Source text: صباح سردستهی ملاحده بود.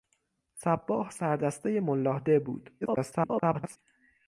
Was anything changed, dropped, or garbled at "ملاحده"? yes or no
no